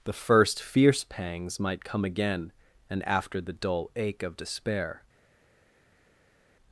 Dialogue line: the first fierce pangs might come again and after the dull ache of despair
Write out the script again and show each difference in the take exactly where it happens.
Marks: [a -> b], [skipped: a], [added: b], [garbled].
the first fierce pangs might come again and after the dull ache of despair